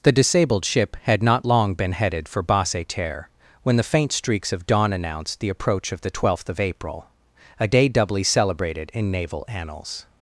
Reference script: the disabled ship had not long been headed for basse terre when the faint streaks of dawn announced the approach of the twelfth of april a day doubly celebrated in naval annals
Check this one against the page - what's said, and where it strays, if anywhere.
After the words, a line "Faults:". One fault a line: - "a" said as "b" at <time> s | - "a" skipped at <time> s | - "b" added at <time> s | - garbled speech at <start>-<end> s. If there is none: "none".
the disabled ship had not long been headed for basse terre when the faint streaks of dawn announced the approach of the twelfth of april a day doubly celebrated in naval annals
Faults:
none